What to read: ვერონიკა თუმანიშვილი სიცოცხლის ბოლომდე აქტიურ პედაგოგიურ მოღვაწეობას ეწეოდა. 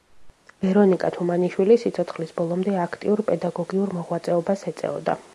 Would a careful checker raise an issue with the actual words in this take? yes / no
no